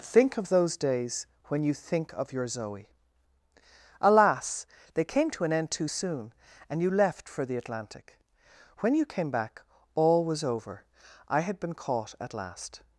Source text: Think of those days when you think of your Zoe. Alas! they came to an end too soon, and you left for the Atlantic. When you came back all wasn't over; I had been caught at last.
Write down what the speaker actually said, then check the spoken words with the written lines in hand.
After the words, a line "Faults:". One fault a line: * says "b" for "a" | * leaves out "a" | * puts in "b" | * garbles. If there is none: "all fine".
Think of those days when you think of your Zoe. Alas! they came to an end too soon, and you left for the Atlantic. When you came back all was over; I had been caught at last.
Faults:
* says "was" for "wasn't"